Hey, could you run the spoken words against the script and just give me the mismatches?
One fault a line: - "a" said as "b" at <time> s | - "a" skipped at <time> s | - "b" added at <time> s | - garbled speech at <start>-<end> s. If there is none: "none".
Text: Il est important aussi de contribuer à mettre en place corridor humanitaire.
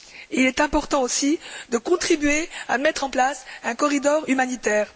- "un" added at 3.6 s